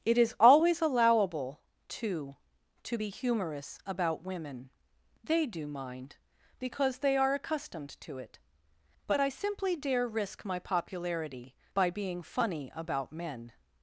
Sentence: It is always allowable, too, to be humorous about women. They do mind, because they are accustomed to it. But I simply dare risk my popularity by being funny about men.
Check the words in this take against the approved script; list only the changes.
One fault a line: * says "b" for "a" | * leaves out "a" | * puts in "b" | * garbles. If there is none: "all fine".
all fine